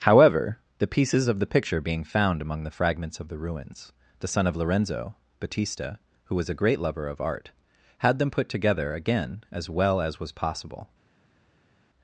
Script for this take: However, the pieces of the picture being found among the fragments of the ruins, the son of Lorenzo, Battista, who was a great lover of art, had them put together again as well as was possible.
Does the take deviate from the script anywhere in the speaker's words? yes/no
no